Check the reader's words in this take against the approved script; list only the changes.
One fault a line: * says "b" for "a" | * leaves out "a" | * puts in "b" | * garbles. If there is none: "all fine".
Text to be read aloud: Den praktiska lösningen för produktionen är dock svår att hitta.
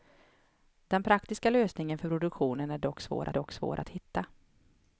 * puts in "dock svår"